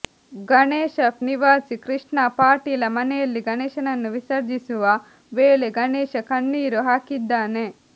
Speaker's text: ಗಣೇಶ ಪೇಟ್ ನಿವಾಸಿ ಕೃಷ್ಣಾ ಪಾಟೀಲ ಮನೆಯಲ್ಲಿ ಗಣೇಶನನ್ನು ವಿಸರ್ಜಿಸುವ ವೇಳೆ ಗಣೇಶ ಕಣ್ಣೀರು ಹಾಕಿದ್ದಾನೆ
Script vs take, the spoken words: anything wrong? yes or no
yes